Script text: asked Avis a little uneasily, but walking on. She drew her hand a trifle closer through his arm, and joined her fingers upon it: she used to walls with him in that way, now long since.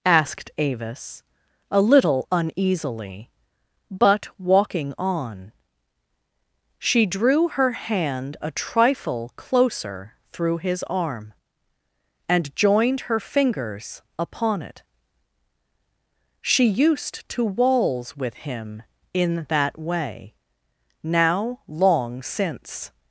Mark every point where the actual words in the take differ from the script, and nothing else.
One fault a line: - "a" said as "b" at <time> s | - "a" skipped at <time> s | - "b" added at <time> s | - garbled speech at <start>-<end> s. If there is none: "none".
none